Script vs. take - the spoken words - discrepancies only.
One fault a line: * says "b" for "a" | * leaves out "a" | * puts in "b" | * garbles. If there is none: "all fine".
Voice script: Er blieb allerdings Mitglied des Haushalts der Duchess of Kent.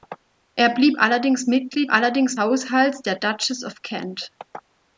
* says "allerdings" for "des"